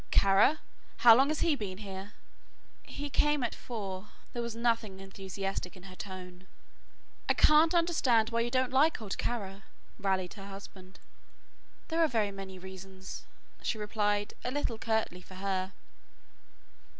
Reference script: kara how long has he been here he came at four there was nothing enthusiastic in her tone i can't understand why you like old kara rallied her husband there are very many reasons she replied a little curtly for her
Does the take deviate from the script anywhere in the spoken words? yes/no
yes